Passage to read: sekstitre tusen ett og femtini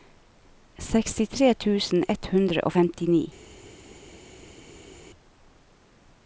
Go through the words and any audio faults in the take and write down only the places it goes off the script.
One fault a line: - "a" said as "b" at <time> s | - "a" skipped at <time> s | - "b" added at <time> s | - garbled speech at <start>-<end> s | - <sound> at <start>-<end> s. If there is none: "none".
- "hundre" added at 2.3 s